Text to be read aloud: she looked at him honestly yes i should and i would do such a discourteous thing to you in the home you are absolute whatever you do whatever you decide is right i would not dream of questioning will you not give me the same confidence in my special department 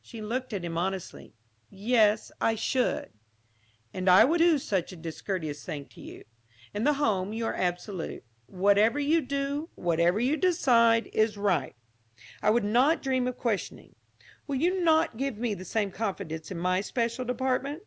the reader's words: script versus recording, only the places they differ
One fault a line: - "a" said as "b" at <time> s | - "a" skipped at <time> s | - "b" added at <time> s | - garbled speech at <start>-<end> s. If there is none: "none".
none